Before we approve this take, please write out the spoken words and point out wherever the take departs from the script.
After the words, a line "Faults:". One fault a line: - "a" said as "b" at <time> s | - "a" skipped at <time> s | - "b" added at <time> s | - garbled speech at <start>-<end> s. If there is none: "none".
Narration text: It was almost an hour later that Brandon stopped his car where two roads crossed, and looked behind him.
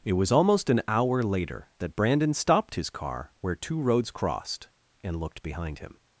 It was almost an hour later that Brandon stopped his car where two roads crossed, and looked behind him.
Faults:
none